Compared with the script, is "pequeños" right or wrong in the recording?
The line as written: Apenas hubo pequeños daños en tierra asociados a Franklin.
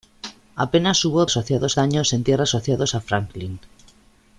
wrong